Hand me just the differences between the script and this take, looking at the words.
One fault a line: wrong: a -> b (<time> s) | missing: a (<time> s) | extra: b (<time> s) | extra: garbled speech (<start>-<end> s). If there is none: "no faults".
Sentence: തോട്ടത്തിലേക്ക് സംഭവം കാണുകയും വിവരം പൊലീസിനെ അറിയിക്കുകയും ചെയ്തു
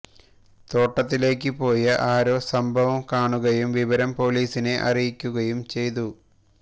extra: പോയ ആരോ (1.6 s)